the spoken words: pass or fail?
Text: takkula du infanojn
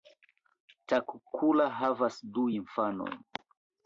fail